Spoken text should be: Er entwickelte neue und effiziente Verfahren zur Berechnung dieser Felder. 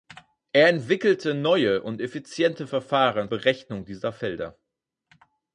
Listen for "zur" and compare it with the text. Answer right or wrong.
wrong